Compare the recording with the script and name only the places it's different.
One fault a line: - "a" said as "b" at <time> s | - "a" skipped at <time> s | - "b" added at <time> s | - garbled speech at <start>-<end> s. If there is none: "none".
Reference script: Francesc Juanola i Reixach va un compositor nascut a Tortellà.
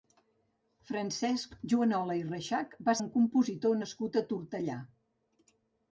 none